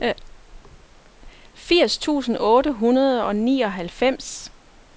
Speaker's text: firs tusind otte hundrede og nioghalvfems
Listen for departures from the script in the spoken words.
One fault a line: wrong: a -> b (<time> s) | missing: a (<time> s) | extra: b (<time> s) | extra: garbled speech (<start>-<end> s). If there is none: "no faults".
no faults